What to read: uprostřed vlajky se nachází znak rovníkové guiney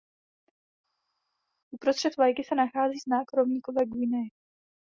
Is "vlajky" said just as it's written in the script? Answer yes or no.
yes